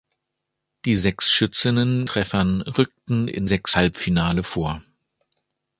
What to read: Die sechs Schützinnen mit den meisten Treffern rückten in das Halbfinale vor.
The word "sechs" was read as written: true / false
true